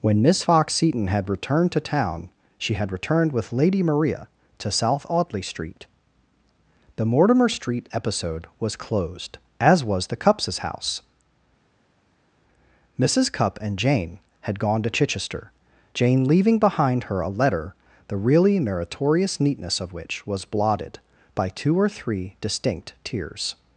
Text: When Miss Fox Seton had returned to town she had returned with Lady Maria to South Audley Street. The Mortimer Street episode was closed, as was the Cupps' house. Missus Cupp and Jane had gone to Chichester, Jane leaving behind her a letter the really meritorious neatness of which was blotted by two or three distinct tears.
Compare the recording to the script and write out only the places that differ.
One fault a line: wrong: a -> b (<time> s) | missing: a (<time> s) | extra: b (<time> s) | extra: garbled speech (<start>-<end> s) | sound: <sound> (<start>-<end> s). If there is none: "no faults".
no faults